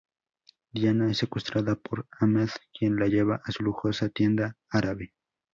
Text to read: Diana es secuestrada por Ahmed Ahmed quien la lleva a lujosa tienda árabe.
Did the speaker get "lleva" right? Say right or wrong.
right